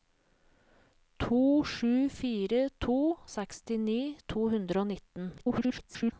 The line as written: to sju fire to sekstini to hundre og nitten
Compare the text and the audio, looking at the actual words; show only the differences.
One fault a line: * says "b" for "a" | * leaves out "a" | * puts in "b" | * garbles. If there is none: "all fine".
* garbles